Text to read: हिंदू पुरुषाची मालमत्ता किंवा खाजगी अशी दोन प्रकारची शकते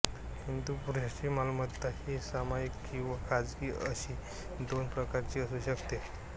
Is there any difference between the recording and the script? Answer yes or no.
yes